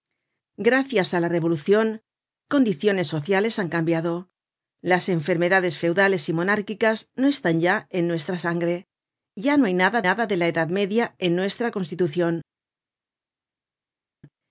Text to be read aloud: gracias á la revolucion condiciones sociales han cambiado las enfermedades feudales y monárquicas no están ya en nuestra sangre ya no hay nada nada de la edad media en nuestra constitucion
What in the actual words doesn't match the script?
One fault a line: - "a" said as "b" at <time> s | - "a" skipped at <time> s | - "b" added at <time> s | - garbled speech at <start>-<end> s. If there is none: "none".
none